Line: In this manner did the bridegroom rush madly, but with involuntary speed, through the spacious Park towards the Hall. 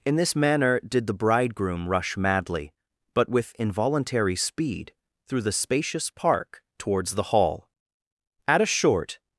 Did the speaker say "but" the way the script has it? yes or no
yes